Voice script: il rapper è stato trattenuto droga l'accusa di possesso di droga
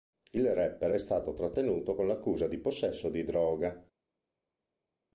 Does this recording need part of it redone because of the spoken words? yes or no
yes